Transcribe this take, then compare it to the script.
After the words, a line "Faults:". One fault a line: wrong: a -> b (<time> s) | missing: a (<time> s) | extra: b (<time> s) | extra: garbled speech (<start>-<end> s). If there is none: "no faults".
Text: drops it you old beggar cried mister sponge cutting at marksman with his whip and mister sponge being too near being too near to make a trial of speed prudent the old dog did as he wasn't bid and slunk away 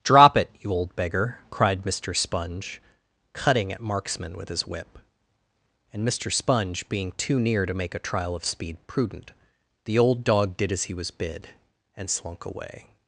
drop it you old beggar cried mister sponge cutting at marksman with his whip and mister sponge being too near to make a trial of speed prudent the old dog did as he was bid and slunk away
Faults:
wrong: drops -> drop (0.0 s)
missing: being too near (7.6 s)
wrong: wasn't -> was (10.9 s)